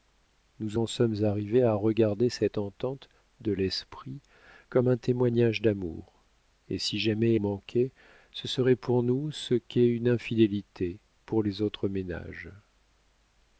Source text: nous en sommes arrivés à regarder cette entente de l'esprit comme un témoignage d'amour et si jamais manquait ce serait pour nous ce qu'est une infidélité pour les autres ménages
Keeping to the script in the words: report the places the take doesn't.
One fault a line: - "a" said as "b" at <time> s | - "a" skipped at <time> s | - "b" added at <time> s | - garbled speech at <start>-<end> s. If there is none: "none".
none